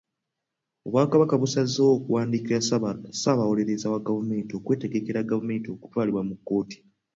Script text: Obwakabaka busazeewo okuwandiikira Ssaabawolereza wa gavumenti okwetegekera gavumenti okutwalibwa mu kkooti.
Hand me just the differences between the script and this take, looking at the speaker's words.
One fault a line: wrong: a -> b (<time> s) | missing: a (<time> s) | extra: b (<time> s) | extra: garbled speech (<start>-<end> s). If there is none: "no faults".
no faults